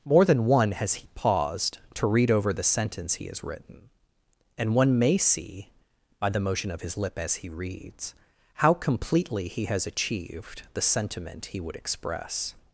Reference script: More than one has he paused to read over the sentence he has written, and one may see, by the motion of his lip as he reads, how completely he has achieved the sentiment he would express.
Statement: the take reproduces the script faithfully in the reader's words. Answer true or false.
true